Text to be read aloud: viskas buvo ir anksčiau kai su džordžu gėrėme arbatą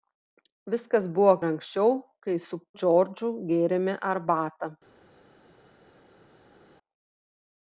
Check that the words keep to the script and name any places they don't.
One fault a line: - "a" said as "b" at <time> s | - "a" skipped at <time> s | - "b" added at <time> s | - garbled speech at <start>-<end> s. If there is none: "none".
none